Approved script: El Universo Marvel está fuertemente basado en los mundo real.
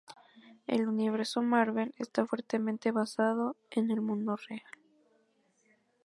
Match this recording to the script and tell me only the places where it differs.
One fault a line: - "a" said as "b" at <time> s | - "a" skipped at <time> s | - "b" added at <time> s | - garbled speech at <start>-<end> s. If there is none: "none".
- "los" said as "el" at 3.9 s